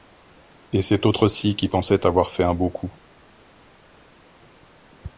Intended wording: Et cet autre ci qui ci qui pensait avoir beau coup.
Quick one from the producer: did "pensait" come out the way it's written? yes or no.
no